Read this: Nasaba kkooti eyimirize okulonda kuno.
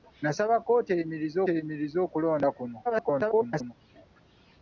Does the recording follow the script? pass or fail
fail